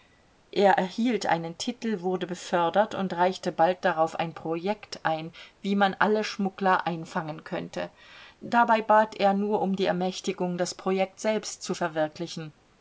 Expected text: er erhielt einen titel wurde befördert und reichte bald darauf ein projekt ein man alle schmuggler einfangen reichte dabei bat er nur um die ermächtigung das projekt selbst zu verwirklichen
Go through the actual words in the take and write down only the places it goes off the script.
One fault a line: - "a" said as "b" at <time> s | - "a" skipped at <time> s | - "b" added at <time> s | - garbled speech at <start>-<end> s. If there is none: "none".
- "wie" added at 5.6 s
- "reichte" said as "könnte" at 7.4 s